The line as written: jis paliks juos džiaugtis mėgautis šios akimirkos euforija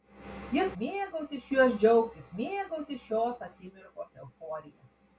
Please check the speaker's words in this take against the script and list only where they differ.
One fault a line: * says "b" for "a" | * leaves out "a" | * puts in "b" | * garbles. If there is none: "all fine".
* says "mėgautis" for "paliks"